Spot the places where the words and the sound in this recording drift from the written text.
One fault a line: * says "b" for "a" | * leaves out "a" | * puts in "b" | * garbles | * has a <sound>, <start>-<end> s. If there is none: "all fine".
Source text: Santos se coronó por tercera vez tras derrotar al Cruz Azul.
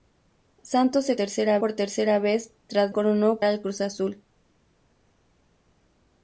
* says "tercera" for "coronó"
* says "coronó" for "derrotar"